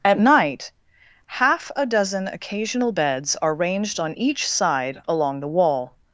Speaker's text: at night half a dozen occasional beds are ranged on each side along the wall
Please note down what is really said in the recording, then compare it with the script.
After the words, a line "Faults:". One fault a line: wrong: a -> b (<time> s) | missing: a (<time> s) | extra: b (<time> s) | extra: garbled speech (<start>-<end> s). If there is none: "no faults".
at night half a dozen occasional beds are ranged on each side along the wall
Faults:
no faults